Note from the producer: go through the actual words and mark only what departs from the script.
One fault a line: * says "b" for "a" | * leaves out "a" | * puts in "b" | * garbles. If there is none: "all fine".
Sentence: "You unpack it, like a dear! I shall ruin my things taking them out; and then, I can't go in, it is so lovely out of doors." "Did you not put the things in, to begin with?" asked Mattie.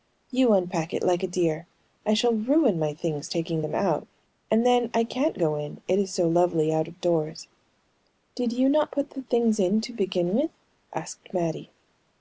all fine